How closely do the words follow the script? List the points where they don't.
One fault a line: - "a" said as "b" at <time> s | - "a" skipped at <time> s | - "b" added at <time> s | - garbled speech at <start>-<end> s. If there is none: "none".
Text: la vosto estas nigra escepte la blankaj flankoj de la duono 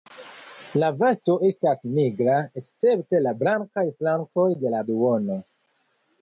none